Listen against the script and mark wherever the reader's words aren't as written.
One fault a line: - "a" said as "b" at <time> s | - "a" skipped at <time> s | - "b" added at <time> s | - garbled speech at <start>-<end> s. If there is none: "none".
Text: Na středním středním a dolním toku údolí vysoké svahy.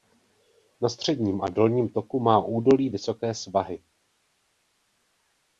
- "středním" skipped at 1.4 s
- "má" added at 2.2 s